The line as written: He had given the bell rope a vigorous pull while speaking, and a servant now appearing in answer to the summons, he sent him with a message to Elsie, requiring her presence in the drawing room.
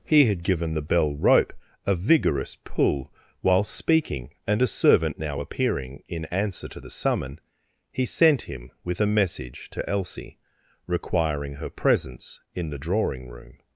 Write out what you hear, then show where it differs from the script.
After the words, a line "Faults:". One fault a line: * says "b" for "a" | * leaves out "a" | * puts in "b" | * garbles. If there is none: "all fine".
He had given the bell rope a vigorous pull while speaking, and a servant now appearing in answer to the summon, he sent him with a message to Elsie, requiring her presence in the drawing room.
Faults:
* says "summon" for "summons"